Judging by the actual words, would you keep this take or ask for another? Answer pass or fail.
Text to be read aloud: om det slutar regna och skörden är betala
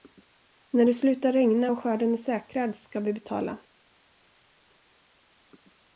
fail